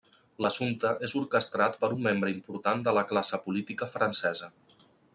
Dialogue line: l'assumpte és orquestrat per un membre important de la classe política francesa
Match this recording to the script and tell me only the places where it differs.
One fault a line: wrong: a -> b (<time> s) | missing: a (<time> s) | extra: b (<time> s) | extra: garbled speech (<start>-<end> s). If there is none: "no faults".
no faults